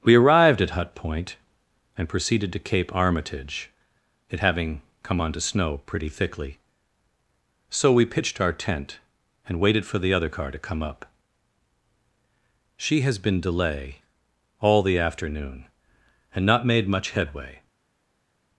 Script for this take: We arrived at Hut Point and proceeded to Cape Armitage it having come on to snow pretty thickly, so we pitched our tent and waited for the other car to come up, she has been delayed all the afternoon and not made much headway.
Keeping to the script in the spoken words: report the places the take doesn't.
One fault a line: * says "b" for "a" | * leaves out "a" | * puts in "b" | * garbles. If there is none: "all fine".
* says "delay" for "delayed"